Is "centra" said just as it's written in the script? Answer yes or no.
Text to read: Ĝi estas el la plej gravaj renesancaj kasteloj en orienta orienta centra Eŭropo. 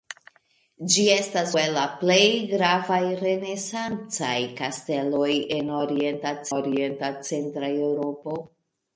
yes